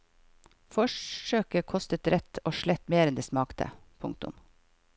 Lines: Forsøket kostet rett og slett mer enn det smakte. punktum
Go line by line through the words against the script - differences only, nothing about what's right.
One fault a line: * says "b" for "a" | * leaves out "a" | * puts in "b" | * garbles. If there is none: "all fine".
all fine